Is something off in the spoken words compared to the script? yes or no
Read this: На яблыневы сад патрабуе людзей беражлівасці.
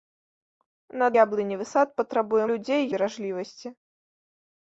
no